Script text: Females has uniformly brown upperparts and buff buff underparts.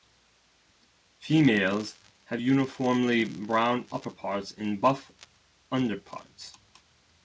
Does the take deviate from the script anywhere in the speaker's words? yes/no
yes